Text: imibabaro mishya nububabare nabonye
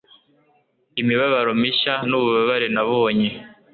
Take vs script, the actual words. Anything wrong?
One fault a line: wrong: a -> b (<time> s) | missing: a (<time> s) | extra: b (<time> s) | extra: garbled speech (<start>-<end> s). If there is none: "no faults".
no faults